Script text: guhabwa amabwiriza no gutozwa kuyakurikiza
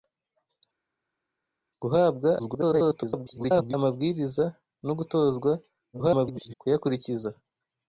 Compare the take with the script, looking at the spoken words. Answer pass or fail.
fail